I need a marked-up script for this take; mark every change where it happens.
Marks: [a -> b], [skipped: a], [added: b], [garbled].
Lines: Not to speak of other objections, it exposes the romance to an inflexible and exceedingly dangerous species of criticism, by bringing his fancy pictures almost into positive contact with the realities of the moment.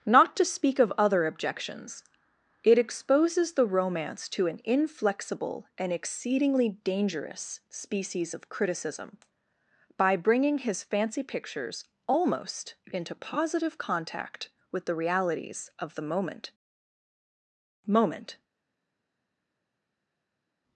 Not to speak of other objections, it exposes the romance to an inflexible and exceedingly dangerous species of criticism, by bringing his fancy pictures almost into positive contact with the realities of the moment. [added: moment]